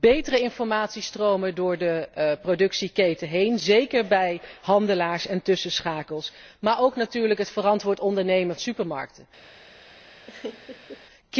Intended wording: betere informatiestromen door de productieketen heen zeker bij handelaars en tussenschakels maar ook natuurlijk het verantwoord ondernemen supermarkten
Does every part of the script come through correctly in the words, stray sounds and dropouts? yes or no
no